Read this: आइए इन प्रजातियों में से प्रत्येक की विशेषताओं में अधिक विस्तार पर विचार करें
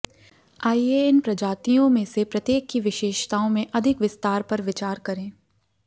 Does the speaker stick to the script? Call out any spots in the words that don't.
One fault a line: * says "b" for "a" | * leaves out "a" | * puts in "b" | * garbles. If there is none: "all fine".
all fine